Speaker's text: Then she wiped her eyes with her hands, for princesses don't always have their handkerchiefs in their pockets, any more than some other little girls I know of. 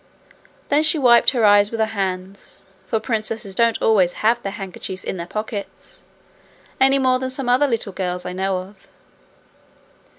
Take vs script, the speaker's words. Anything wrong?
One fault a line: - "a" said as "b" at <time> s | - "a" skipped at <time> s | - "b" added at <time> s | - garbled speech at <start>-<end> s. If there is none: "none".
none